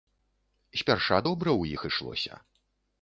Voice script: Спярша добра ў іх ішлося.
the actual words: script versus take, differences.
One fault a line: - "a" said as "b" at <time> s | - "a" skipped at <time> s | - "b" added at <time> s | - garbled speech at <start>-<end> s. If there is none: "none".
none